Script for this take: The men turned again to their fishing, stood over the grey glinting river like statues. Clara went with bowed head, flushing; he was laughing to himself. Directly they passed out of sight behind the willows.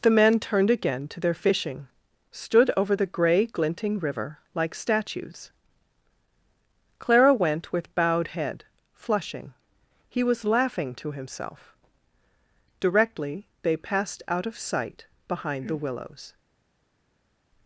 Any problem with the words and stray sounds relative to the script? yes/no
no